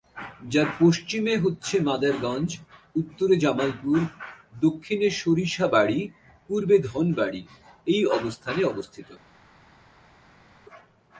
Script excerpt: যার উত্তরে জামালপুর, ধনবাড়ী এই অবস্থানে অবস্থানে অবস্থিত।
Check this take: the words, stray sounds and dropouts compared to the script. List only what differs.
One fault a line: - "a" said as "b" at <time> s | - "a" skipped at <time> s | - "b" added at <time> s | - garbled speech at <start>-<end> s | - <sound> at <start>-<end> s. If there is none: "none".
- "পশ্চিমে হচ্ছে মাদারগঞ্জ" added at 0.8 s
- "দক্ষিণে সরিষাবাড়ী পূর্বে" added at 4.6 s
- "অবস্থানে" skipped at 8.6 s